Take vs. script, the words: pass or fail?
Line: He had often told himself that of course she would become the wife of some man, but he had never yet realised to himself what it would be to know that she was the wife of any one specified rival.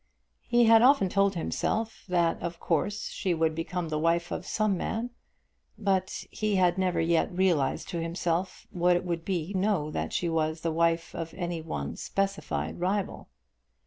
fail